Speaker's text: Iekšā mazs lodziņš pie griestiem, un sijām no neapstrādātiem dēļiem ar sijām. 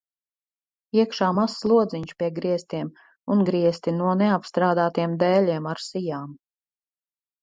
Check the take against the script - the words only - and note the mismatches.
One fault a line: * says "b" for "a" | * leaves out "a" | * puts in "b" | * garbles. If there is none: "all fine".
* says "griesti" for "sijām"